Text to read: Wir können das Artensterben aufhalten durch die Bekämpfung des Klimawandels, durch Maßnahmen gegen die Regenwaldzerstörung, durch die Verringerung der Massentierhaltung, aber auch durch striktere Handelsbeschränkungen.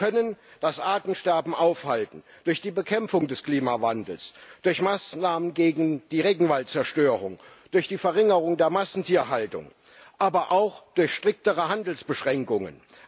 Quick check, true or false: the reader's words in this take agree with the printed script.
true